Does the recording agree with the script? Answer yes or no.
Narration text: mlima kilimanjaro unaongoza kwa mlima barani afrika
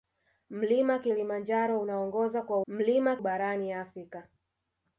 yes